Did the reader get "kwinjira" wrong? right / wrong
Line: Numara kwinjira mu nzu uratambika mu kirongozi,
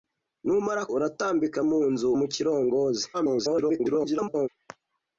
wrong